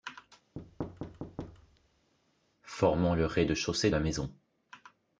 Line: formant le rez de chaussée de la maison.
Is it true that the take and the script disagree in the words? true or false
true